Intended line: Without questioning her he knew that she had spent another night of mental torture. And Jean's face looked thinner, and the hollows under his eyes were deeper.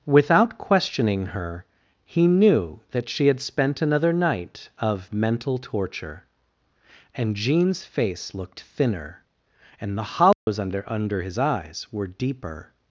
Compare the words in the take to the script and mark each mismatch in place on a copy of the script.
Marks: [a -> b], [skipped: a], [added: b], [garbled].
Without questioning her he knew that she had spent another night of mental torture. And Jean's face looked thinner, and the hollows under [added: under] his eyes were deeper.